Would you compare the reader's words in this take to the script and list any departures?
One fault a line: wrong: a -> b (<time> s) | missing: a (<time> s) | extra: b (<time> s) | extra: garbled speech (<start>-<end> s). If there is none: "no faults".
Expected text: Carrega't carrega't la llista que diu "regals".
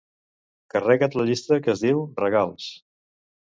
missing: carrega't (1.2 s)
extra: es (1.7 s)